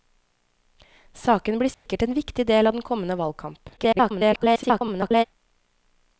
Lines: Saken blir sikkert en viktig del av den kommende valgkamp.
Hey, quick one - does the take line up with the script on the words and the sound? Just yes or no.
no